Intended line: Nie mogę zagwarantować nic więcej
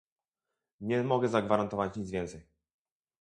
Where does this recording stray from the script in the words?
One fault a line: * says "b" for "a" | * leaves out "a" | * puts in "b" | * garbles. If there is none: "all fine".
all fine